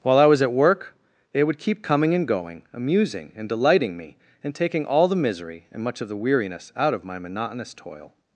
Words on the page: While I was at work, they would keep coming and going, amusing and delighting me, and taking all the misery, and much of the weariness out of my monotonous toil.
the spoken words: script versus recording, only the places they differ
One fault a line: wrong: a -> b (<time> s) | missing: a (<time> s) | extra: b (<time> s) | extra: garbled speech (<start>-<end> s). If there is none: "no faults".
no faults